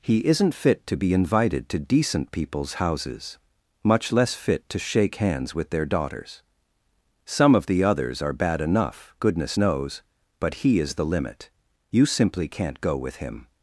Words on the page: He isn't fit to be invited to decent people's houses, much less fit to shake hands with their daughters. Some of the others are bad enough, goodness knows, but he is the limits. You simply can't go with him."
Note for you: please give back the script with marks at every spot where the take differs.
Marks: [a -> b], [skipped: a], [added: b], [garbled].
He isn't fit to be invited to decent people's houses, much less fit to shake hands with their daughters. Some of the others are bad enough, goodness knows, but he is the [limits. -> limit] You simply can't go with him."